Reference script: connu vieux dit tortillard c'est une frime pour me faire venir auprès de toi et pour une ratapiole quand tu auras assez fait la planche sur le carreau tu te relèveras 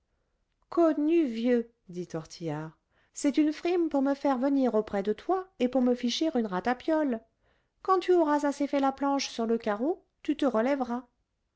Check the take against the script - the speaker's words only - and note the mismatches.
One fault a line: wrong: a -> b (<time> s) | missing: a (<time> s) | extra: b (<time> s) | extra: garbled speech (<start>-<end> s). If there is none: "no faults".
extra: me ficher (5.8 s)